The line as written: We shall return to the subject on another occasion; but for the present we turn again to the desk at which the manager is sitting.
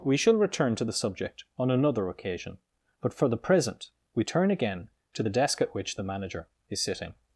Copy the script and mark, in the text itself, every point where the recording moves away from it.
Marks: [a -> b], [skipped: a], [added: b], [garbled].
We shall return to the subject on another occasion; but for the present we turn again to the desk at which the manager is sitting.